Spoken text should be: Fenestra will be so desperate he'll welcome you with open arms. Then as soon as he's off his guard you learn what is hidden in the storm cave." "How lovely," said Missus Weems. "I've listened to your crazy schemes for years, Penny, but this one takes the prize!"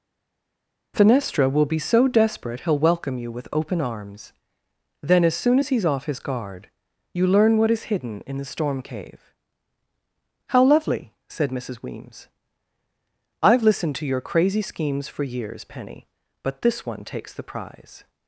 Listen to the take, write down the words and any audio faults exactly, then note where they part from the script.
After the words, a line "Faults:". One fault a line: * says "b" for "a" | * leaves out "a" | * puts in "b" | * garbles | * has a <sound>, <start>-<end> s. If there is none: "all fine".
Fenestra will be so desperate he'll welcome you with open arms. Then as soon as he's off his guard you learn what is hidden in the storm cave." "How lovely," said Missus Weems. "I've listened to your crazy schemes for years, Penny, but this one takes the prize!"
Faults:
all fine